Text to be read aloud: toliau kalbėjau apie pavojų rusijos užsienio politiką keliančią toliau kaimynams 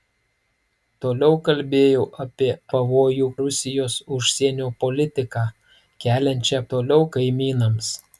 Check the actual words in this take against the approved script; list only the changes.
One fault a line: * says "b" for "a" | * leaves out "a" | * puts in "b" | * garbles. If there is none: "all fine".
all fine